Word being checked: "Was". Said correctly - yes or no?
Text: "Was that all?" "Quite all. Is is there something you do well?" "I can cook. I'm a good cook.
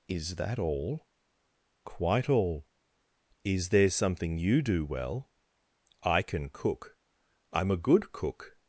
no